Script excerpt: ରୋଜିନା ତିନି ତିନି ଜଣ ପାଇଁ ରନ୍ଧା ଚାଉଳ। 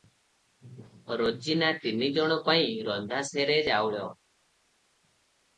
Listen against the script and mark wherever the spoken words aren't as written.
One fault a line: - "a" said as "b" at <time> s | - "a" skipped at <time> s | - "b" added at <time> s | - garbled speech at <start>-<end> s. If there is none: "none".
- "ତିନି" skipped at 2.1 s
- "ସେରେ" added at 3.3 s